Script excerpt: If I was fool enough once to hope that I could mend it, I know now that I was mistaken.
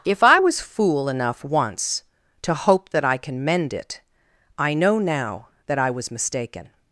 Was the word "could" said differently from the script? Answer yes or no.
yes